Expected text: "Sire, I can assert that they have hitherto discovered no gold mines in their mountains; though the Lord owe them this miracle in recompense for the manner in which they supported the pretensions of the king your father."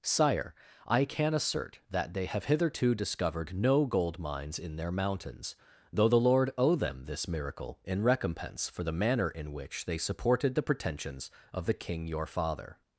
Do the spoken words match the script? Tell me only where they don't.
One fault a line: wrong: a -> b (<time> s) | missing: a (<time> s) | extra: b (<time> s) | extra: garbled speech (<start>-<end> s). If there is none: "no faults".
no faults